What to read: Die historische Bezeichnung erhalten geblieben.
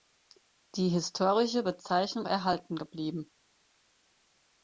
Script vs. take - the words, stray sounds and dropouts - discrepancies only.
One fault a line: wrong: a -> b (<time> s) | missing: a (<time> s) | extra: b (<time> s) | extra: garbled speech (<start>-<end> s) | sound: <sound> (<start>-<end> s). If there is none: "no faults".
no faults